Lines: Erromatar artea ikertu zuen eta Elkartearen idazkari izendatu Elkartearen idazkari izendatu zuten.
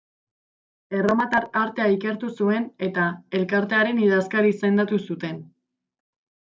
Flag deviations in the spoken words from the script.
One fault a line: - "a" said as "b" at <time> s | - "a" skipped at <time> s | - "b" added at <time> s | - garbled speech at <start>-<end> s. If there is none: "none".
- "Elkartearen idazkari izendatu" skipped at 5.0 s